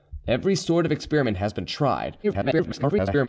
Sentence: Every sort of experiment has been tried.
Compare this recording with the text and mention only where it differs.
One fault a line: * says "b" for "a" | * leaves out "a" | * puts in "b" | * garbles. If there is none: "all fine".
* garbles